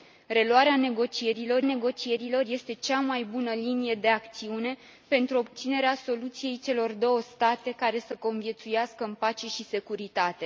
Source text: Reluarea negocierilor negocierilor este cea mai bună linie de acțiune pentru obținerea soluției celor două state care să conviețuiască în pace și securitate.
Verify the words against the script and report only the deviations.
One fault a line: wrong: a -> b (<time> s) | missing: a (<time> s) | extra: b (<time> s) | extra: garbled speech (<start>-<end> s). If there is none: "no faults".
no faults